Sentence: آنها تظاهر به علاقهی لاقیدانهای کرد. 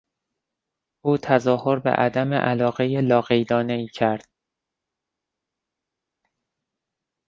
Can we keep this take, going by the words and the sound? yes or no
no